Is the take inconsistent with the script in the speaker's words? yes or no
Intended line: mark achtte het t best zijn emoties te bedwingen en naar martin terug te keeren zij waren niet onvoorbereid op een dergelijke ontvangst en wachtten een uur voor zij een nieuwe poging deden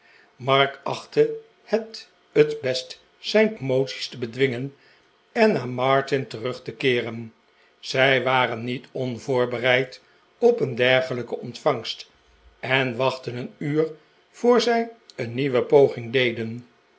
no